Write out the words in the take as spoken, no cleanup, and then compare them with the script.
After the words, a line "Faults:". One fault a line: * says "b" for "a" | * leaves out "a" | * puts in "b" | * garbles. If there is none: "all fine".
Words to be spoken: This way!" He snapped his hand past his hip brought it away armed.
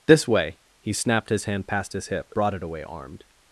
This way!" He snapped his hand past his hip brought it away armed.
Faults:
all fine